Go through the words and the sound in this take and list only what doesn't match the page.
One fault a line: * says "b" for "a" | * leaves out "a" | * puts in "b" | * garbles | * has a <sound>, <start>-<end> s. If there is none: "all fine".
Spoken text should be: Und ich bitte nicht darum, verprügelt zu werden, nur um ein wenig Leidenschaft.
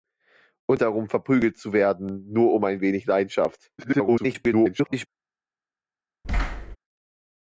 * leaves out "ich bitte nicht"
* garbles
* has a thud, 6.2-6.8 s